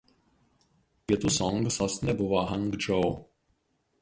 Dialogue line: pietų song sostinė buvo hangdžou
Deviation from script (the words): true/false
false